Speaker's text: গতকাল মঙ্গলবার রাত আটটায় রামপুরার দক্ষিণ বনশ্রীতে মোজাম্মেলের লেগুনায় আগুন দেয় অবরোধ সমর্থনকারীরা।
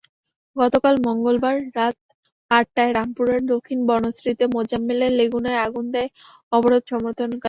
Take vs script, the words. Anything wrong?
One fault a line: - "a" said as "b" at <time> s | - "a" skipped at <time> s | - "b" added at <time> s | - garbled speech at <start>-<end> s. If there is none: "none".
none